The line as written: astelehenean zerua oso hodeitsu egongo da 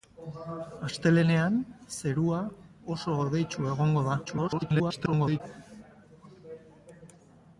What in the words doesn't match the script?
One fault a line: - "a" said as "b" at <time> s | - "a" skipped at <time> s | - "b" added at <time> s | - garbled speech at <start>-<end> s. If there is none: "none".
- garbled speech at 4.2-5.4 s